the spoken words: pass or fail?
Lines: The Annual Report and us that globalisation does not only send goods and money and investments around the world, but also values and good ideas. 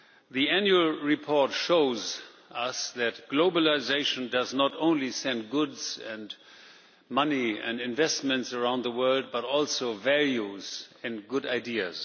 fail